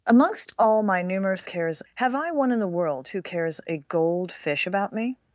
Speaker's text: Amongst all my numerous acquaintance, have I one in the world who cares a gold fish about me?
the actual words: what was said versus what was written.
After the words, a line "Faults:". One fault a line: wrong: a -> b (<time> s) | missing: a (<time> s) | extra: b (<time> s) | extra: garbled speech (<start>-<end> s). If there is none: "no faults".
Amongst all my numerous cares, have I one in the world who cares a gold fish about me?
Faults:
wrong: acquaintance -> cares (1.4 s)